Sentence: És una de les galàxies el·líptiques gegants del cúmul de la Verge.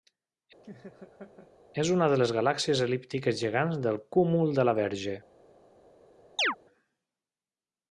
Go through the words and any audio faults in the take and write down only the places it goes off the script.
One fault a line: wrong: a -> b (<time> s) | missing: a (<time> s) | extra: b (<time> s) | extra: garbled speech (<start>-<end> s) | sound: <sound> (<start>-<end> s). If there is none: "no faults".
sound: laugh (0.6-1.5 s)
sound: chirp (6.4-6.6 s)